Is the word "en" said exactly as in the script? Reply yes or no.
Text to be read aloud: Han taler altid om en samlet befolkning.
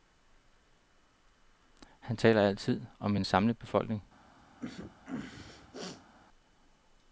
yes